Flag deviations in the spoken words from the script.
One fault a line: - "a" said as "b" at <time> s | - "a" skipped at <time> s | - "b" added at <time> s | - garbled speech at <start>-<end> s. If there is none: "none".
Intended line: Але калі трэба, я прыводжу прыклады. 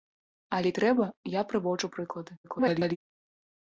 - "калі" skipped at 0.7 s
- garbled speech at 2.4-3.0 s